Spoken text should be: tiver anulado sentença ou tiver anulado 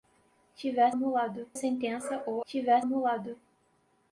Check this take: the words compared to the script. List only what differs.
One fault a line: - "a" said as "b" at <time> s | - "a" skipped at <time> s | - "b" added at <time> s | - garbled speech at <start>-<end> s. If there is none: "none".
none